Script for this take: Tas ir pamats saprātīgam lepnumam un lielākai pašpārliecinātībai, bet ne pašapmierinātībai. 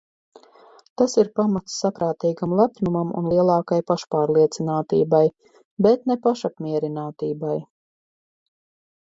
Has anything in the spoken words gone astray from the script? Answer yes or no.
no